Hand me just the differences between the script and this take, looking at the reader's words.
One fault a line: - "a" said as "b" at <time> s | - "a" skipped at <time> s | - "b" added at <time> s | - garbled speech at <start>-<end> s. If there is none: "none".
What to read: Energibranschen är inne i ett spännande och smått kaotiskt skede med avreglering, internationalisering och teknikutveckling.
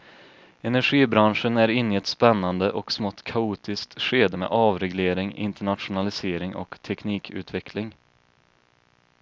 none